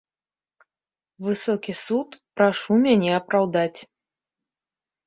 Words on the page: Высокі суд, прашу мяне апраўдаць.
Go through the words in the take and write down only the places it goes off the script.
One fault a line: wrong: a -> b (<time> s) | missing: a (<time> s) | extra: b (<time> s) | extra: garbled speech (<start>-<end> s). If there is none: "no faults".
no faults